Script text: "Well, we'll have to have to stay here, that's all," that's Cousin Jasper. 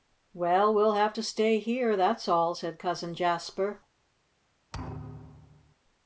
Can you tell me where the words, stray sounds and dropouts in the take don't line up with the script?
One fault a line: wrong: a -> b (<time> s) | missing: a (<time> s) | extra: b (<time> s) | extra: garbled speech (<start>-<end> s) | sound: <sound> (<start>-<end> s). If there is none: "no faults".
missing: have to (1.2 s)
wrong: that's -> said (2.5 s)
sound: thud (4.7-5.8 s)